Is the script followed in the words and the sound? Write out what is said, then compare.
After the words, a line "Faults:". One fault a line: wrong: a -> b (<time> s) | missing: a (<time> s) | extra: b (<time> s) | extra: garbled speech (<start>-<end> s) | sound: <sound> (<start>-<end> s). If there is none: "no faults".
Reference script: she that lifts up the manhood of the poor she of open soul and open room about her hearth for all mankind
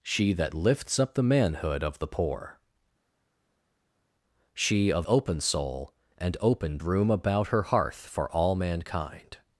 she that lifts up the manhood of the poor she of open soul and open room about her hearth for all mankind
Faults:
no faults